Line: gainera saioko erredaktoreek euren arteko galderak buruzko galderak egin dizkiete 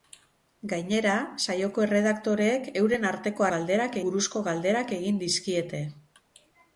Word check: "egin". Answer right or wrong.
right